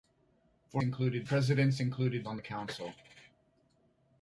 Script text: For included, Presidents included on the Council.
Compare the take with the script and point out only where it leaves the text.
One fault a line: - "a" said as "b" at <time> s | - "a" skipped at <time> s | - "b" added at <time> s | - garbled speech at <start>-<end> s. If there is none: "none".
none